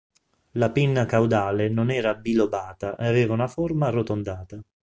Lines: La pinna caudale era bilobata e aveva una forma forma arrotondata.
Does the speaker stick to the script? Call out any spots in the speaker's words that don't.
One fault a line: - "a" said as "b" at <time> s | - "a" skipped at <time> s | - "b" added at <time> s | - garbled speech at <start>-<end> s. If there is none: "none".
- "non" added at 1.7 s
- "forma" skipped at 3.9 s